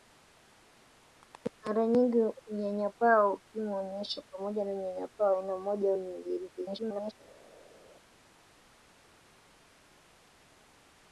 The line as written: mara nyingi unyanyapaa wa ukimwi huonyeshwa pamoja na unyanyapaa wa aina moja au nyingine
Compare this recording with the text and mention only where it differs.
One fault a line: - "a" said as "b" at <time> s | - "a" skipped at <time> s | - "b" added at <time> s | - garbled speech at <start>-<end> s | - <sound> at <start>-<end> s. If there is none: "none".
- garbled speech at 6.6-7.1 s